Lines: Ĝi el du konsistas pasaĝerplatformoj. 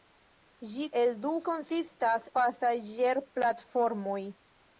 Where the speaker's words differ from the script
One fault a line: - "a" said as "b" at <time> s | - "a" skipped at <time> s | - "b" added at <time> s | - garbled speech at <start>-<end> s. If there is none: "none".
none